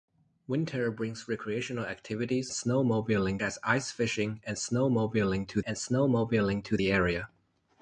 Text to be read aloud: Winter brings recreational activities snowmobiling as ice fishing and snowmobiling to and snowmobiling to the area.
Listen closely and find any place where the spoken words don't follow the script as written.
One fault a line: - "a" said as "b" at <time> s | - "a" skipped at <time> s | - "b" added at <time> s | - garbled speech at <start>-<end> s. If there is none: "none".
none